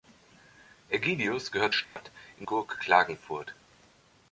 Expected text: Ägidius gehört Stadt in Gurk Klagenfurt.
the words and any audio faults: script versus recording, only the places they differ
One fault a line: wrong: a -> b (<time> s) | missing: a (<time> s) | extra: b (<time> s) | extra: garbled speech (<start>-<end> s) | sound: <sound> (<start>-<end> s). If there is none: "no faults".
sound: dropout (1.8-2.0 s)